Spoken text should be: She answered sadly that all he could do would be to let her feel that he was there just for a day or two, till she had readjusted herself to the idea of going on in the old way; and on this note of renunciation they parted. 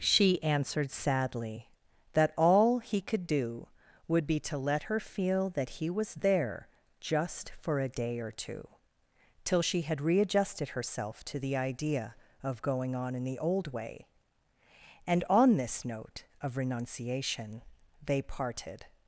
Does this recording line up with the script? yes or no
yes